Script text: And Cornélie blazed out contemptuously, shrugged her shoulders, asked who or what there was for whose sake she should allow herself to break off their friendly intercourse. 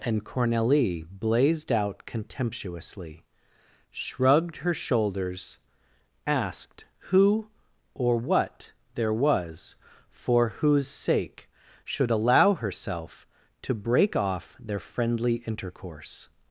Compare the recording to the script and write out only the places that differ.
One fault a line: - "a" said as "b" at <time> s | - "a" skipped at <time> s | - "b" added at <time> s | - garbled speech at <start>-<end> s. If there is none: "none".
- "she" skipped at 11.5 s